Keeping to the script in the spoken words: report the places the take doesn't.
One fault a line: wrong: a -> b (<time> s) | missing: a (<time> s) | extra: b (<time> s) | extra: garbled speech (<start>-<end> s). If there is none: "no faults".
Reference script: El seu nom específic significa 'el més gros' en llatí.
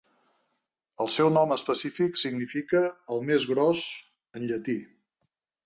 no faults